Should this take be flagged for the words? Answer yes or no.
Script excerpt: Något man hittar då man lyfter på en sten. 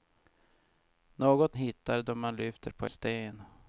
yes